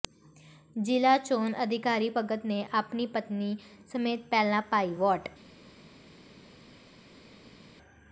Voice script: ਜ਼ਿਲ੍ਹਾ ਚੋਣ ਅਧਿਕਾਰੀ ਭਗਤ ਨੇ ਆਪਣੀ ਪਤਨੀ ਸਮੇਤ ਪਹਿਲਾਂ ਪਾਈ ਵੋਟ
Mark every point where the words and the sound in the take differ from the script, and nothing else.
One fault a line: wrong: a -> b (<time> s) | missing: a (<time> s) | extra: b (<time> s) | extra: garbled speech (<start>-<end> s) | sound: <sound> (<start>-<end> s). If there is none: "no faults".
no faults